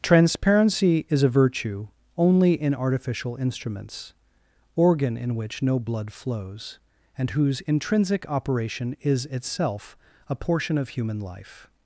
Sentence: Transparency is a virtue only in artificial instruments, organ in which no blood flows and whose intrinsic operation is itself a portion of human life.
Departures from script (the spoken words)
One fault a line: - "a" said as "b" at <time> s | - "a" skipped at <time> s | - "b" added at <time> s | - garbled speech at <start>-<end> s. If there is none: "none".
none